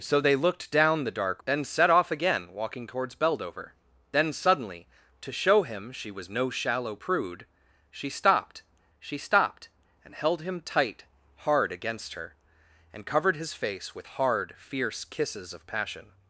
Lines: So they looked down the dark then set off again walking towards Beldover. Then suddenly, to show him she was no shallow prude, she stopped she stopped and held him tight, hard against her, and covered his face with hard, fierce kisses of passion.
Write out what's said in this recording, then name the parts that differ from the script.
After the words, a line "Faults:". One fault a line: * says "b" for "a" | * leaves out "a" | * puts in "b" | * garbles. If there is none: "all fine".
So they looked down the dark then set off again walking towards Beldover. Then suddenly, to show him she was no shallow prude, she stopped she stopped and held him tight, hard against her, and covered his face with hard, fierce kisses of passion.
Faults:
all fine